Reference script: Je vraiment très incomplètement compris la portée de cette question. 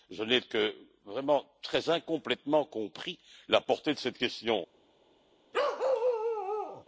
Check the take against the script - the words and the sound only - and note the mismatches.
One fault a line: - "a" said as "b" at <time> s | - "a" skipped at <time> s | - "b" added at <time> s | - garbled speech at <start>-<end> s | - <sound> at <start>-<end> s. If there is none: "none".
- "n'ai que" added at 0.2 s
- bark at 5.5-6.8 s